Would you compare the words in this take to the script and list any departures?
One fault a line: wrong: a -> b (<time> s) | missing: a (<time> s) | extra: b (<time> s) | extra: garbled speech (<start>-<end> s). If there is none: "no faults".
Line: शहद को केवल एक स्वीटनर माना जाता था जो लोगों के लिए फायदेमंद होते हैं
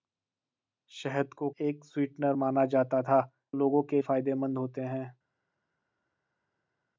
missing: केवल (1.5 s)
missing: जो (3.2 s)
missing: लिए (4.0 s)